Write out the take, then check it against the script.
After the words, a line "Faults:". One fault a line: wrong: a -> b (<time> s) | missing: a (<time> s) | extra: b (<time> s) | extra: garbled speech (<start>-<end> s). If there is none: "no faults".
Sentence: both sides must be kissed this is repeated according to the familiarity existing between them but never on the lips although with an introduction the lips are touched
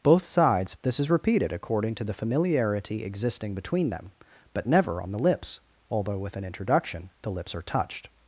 both sides this is repeated according to the familiarity existing between them but never on the lips although with an introduction the lips are touched
Faults:
missing: must be kissed (0.8 s)